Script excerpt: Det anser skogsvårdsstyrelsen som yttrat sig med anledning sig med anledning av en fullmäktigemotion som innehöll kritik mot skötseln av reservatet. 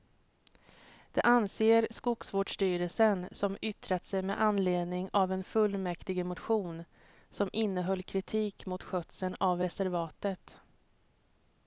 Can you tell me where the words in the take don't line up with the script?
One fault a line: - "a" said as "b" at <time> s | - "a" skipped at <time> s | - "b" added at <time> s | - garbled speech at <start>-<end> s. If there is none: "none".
- "sig med anledning" skipped at 5.1 s